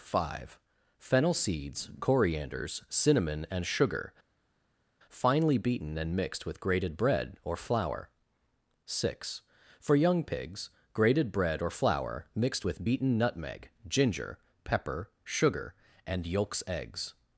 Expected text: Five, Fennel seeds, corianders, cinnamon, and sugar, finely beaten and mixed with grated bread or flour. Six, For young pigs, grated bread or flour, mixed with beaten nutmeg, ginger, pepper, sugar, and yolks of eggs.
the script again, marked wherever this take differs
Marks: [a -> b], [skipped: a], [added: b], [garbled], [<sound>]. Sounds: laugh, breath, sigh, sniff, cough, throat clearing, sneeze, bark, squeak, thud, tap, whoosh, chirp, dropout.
Five, Fennel seeds, corianders, cinnamon, and sugar, finely beaten and mixed with grated bread or flour. Six, For young pigs, grated bread or flour, mixed with beaten nutmeg, ginger, pepper, sugar, and yolks [skipped: of] eggs.